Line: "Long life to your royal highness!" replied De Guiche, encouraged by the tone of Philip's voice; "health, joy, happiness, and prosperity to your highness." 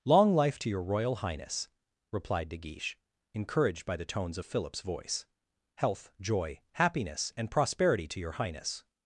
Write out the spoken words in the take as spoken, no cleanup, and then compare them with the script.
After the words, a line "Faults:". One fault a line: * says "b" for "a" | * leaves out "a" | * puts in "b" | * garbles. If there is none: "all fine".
"Long life to your royal highness!" replied De Guiche, encouraged by the tones of Philip's voice; "health, joy, happiness, and prosperity to your highness."
Faults:
* says "tones" for "tone"